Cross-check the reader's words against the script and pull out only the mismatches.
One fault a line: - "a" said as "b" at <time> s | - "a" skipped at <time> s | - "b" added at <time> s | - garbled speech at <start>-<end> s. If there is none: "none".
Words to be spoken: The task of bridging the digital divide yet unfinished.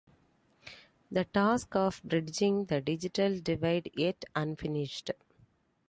none